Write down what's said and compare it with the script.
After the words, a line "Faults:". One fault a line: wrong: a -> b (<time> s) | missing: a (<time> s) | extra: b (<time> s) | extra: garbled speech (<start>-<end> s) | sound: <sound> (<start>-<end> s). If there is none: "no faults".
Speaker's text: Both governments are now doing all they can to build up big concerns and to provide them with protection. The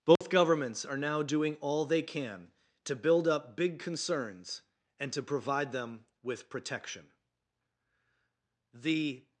Both governments are now doing all they can to build up big concerns and to provide them with protection. The
Faults:
sound: dropout (0.2-0.2 s)